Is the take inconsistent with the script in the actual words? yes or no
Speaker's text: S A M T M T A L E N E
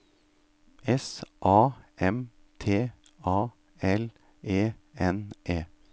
yes